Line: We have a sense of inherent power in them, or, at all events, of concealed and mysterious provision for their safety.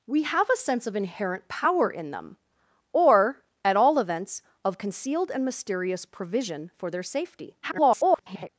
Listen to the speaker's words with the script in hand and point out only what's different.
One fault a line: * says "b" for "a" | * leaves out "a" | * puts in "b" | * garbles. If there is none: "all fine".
* garbles